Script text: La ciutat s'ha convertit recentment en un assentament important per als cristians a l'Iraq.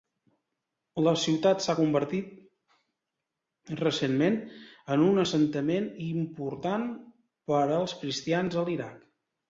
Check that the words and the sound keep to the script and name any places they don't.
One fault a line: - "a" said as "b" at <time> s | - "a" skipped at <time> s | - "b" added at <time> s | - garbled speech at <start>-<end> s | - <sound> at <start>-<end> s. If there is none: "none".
none